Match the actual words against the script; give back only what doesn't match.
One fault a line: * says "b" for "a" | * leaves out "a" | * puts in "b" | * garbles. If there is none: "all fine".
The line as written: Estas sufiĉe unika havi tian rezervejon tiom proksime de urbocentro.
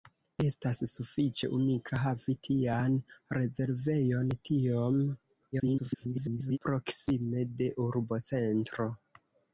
* garbles